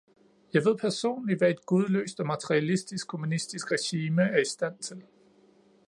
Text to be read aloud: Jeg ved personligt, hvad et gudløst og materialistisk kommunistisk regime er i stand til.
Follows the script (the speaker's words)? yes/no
yes